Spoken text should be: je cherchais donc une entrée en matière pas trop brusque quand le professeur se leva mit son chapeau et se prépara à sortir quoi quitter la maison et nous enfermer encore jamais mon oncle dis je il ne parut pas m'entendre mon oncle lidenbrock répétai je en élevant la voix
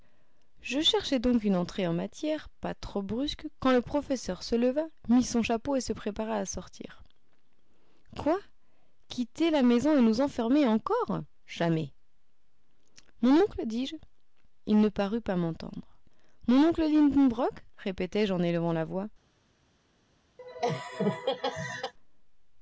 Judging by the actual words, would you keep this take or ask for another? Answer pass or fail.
pass